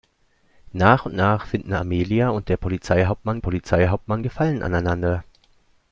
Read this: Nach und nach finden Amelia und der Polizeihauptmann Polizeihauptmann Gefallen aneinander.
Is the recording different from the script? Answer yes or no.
no